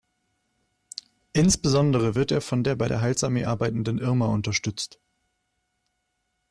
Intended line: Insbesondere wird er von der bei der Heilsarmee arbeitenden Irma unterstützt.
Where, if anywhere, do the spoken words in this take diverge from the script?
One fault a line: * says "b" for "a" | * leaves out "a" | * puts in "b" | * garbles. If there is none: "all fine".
all fine